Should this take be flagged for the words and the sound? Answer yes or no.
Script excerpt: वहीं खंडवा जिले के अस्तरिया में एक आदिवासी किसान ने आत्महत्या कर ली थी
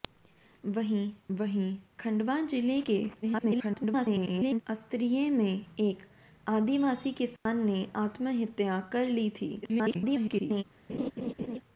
yes